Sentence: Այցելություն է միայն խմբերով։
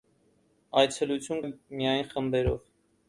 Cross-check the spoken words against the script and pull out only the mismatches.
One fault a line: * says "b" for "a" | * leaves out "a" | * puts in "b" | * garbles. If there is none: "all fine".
all fine